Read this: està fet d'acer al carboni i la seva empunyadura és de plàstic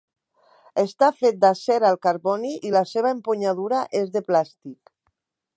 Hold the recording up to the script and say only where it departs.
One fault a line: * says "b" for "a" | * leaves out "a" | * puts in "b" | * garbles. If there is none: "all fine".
all fine